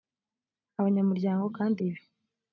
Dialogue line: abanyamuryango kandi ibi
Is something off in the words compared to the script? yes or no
no